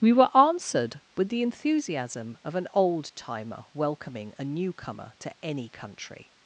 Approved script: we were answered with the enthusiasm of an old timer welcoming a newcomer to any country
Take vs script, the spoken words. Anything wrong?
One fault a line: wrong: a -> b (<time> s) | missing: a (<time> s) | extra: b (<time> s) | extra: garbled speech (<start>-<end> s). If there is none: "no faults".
no faults